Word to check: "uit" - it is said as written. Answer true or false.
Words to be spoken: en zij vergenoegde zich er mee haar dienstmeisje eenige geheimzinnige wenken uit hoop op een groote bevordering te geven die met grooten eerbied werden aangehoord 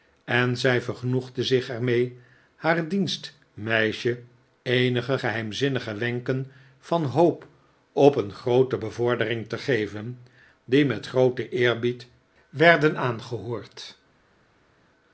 false